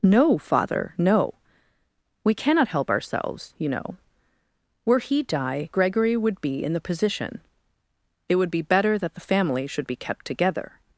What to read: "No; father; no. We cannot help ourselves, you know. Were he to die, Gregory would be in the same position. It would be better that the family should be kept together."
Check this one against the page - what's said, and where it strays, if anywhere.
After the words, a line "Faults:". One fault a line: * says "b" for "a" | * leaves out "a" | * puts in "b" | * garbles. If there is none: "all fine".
"No; father; no. We cannot help ourselves, you know. Were he die, Gregory would be in the position. It would be better that the family should be kept together."
Faults:
* leaves out "to"
* leaves out "same"